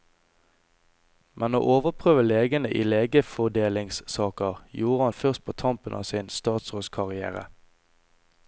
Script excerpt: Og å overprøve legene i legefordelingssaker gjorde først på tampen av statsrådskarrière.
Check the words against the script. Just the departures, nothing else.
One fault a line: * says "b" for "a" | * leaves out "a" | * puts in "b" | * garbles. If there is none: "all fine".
* says "Men" for "Og"
* puts in "han"
* puts in "sin"